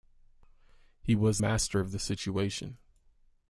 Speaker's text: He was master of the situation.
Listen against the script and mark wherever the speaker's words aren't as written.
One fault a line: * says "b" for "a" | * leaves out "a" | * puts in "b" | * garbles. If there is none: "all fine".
all fine